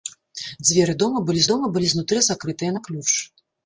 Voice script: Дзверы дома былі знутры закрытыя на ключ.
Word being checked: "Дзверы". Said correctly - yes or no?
yes